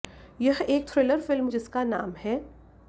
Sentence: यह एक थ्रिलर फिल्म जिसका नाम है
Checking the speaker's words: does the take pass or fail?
pass